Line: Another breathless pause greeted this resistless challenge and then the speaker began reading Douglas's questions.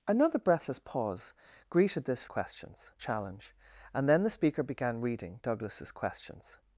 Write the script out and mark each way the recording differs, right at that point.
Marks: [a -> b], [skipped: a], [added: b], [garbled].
Another breathless pause greeted this [resistless -> questions] challenge and then the speaker began reading Douglas's questions.